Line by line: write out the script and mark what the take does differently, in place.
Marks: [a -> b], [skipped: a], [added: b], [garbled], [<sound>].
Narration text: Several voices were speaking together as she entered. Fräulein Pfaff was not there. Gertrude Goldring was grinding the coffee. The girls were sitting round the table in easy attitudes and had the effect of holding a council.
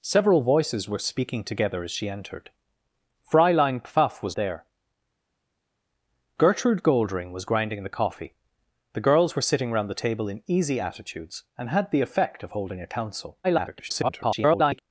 Several voices were speaking together as she entered. Fräulein Pfaff was [skipped: not] there. Gertrude Goldring was grinding the coffee. The girls were sitting round the table in easy attitudes and had the effect of holding a council. [garbled]